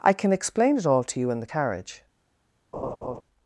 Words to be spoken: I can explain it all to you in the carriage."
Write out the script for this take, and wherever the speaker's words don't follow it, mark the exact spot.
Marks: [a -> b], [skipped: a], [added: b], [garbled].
I can explain it all to you in the carriage."